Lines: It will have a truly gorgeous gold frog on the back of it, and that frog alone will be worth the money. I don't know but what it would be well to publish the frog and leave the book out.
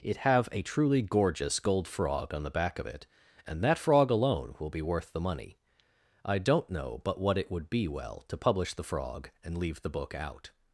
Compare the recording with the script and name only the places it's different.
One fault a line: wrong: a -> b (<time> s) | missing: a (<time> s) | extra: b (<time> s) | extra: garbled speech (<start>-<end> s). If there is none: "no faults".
missing: will (0.2 s)